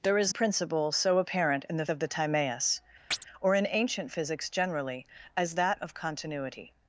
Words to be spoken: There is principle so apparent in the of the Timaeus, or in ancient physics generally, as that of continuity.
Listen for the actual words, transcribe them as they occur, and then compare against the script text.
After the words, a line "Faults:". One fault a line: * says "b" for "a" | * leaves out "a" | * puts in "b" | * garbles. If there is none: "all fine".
There is principle so apparent in the of the Timaeus, or in ancient physics generally, as that of continuity.
Faults:
all fine